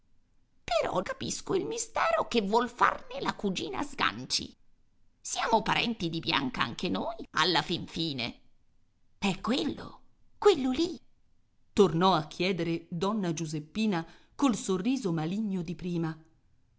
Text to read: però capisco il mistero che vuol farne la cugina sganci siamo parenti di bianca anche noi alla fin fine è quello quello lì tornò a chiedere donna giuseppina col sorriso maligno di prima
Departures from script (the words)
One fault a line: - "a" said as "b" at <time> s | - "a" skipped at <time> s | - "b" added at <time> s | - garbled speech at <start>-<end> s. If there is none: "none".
none